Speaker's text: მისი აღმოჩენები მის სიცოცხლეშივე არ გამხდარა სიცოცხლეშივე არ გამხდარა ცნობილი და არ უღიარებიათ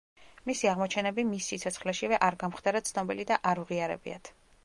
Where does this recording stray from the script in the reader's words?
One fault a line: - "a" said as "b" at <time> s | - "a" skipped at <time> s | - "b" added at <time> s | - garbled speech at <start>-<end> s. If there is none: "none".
- "სიცოცხლეშივე არ გამხდარა" skipped at 2.8 s